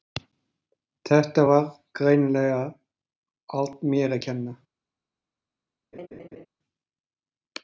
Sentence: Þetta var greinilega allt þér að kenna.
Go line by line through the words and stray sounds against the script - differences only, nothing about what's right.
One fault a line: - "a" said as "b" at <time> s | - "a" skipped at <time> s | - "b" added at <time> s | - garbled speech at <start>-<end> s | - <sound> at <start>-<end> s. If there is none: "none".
- "þér" said as "mér" at 3.9 s
- laugh at 5.9-6.5 s